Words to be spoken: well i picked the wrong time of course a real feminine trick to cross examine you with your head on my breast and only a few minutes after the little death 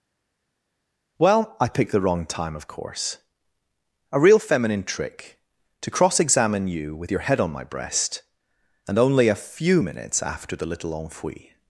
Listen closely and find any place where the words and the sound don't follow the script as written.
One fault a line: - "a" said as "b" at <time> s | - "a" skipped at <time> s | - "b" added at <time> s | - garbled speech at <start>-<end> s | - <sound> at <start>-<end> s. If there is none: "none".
- "death" said as "enfui" at 10.9 s